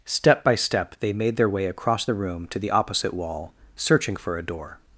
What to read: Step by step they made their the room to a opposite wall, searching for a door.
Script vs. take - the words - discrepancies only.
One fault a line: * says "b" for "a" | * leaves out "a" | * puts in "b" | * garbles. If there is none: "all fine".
* puts in "way across"
* says "the" for "a"